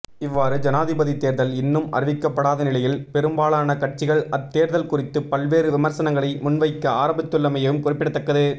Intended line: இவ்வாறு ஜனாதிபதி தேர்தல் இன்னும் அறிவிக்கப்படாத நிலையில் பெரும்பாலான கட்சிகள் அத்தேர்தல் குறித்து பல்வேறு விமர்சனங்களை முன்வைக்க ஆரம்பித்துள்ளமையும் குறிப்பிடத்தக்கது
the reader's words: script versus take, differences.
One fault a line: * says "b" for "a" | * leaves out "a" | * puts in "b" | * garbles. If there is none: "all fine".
all fine